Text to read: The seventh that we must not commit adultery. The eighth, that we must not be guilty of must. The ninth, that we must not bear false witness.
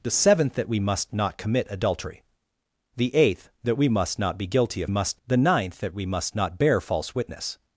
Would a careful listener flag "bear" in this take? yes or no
no